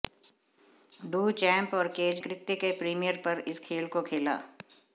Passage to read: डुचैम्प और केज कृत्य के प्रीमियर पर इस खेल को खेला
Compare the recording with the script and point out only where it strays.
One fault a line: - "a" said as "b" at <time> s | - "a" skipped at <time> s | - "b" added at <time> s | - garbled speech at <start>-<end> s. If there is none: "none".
none